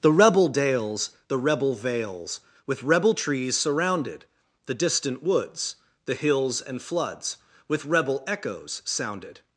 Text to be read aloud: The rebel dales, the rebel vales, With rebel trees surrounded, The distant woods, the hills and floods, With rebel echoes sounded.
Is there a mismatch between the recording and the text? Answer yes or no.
no